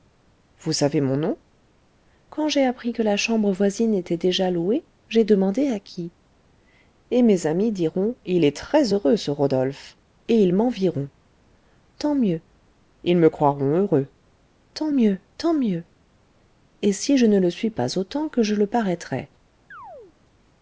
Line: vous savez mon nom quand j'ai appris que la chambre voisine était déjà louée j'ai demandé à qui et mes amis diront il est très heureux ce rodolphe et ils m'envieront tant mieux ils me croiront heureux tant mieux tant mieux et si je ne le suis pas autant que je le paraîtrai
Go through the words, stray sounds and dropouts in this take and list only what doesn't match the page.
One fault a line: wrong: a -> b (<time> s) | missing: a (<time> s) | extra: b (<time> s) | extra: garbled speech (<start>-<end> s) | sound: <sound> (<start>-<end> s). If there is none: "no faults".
sound: chirp (19.7-20.2 s)